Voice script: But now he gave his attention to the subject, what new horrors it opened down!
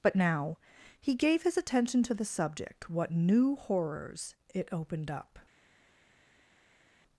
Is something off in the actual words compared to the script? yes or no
yes